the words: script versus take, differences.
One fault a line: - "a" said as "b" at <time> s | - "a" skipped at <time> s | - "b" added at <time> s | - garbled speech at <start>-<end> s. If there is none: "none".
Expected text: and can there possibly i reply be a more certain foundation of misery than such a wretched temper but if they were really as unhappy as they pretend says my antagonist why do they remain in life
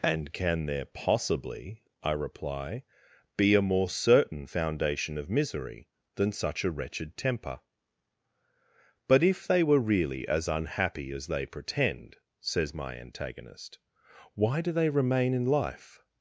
none